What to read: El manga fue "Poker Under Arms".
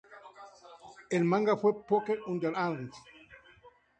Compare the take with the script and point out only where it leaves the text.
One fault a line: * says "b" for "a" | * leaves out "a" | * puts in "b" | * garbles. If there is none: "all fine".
all fine